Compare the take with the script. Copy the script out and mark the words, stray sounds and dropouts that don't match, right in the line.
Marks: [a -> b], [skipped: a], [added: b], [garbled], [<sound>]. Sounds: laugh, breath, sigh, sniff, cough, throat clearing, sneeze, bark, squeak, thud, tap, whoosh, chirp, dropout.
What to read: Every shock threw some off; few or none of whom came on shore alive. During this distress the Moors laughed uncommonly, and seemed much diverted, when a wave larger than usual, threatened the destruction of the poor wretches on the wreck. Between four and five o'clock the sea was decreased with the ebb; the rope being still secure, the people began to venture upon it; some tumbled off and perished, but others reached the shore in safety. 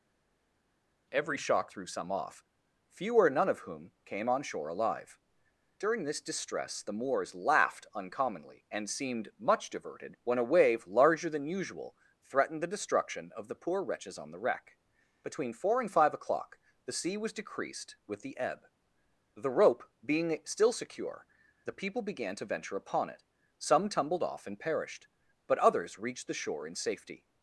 Every shock threw some off; few or none of whom came on shore alive. During this distress the Moors laughed uncommonly, and seemed much diverted, when a wave larger than usual, threatened the destruction of the poor wretches on the wreck. Between four and five o'clock the sea was decreased with the ebb; the rope being still secure, the people began to venture upon it; some tumbled off and perished, but others reached the shore in safety.